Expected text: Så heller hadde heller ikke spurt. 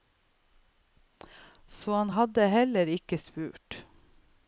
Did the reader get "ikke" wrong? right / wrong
right